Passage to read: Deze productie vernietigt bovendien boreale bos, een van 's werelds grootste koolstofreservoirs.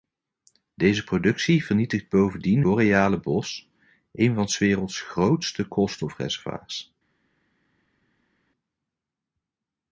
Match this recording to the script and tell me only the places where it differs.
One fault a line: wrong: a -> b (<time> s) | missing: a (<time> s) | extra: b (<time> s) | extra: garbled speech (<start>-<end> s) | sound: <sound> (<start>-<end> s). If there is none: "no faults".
no faults